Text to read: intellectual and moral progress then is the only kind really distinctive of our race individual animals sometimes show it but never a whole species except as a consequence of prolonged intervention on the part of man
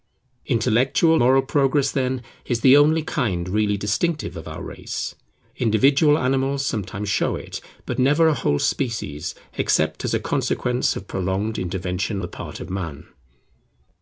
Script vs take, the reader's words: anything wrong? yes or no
yes